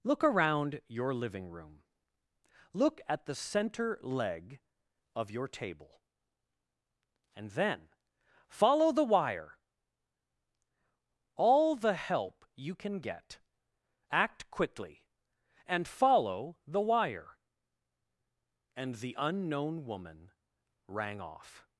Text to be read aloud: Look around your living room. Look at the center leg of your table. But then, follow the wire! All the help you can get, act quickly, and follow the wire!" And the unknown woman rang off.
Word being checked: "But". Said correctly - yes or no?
no